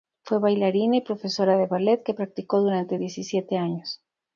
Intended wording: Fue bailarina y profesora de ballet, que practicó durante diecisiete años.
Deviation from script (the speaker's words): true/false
false